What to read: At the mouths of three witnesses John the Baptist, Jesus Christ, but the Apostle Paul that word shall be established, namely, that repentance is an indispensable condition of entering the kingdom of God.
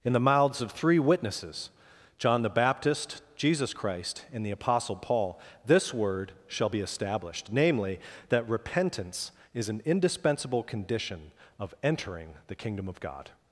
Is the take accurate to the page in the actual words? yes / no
no